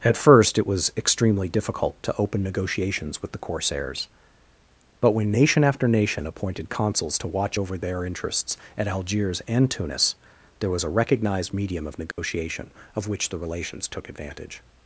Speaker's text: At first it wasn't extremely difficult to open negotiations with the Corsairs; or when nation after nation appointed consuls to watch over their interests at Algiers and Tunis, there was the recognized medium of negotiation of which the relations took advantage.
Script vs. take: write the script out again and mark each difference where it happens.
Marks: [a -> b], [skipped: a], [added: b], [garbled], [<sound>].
At first it [wasn't -> was] extremely difficult to open negotiations with the Corsairs; [or -> but] when nation after nation appointed consuls to watch over their interests at Algiers and Tunis, there was [the -> a] recognized medium of negotiation [dropout] of which the relations took advantage.